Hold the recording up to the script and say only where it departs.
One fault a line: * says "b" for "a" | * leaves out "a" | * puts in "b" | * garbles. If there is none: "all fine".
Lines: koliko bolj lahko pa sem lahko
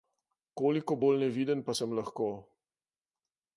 * says "neviden" for "lahko"